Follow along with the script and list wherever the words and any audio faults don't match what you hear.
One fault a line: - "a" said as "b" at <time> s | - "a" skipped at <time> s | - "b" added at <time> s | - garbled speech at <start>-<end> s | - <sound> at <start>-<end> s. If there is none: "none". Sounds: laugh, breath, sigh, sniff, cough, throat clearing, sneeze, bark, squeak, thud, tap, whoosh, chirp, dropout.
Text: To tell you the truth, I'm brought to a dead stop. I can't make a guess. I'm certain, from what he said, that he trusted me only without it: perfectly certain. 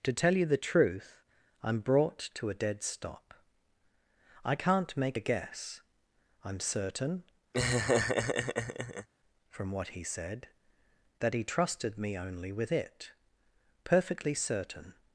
- laugh at 7.5-9.1 s
- "without" said as "with" at 12.5 s